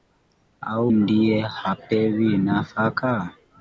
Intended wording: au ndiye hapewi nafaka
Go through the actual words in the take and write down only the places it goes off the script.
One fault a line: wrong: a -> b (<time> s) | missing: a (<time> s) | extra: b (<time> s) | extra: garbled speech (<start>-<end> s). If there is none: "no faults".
no faults